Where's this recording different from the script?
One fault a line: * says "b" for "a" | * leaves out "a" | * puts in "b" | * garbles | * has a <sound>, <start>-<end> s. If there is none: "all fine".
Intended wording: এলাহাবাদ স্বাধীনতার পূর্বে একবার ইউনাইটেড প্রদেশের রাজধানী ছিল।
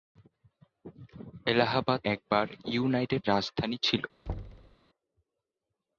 * leaves out "স্বাধীনতার পূর্বে"
* leaves out "প্রদেশের"
* has a thud, 4.3-4.8 s